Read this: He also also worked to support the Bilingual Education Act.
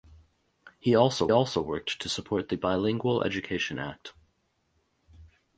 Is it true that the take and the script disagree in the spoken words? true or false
false